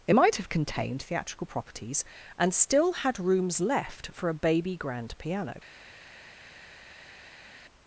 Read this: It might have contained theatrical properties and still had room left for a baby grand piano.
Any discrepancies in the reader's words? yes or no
yes